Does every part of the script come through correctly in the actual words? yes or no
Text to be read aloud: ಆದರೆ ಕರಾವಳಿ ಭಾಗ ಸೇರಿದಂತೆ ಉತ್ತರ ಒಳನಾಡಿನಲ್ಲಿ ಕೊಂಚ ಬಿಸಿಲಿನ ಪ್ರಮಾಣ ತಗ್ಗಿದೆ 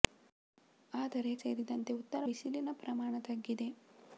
no